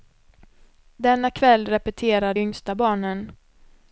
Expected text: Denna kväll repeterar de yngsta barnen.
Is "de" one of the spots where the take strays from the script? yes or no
yes